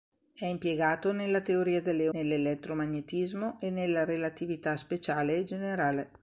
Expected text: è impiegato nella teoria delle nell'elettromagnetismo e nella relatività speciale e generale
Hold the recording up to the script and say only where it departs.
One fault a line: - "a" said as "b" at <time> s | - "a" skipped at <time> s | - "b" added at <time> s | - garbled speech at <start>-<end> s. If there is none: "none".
none